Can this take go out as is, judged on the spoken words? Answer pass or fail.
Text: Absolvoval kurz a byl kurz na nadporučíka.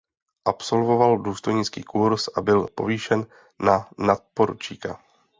fail